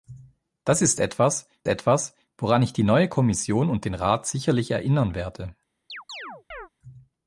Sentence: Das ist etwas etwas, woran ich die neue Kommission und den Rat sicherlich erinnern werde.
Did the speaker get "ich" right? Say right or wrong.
right